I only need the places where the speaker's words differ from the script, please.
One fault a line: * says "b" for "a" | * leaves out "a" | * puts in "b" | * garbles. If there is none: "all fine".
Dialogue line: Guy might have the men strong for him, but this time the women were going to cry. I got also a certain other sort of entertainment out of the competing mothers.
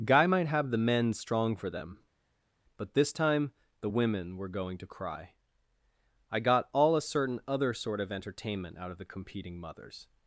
* says "them" for "him"
* says "all" for "also"